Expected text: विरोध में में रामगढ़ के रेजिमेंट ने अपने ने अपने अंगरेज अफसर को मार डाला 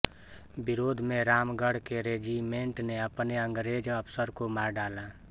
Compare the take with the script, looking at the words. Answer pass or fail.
fail